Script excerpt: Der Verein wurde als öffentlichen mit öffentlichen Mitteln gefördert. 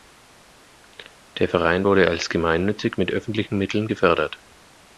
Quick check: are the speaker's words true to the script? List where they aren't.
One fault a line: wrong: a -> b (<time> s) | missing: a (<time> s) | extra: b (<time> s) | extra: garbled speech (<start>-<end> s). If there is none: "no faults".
wrong: öffentlichen -> gemeinnützig (2.3 s)